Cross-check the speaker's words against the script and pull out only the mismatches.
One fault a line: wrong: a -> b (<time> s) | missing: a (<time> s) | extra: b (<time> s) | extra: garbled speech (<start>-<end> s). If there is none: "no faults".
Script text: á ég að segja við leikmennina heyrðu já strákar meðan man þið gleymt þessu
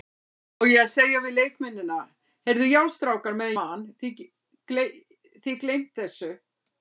no faults